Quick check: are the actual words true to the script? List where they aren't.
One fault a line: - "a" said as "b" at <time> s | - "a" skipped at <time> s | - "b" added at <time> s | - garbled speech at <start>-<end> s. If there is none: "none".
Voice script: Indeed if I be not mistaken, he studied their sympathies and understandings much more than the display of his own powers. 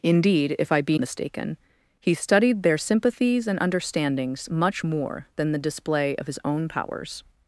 - "not" skipped at 1.0 s